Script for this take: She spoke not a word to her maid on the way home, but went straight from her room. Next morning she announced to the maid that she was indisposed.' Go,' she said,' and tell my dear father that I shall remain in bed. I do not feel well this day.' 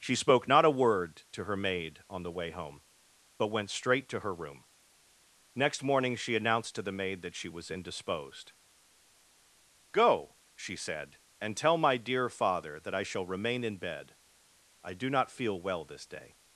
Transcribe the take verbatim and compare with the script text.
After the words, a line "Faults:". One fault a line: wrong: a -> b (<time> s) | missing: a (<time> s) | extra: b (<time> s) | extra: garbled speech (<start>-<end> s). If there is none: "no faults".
She spoke not a word to her maid on the way home, but went straight to her room. Next morning she announced to the maid that she was indisposed.' Go,' she said,' and tell my dear father that I shall remain in bed. I do not feel well this day.'
Faults:
wrong: from -> to (4.1 s)